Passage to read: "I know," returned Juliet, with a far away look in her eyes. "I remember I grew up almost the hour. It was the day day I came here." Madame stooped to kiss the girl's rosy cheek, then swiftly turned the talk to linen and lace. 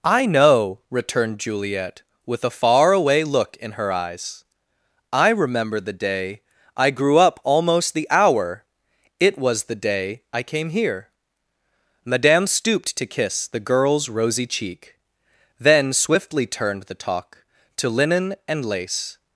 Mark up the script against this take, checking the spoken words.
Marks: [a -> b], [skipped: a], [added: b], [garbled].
"I know," returned Juliet, with a far away look in her eyes. "I remember [added: the day] I grew up almost the hour. It was the day [skipped: day] I came here." Madame stooped to kiss the girl's rosy cheek, then swiftly turned the talk to linen and lace.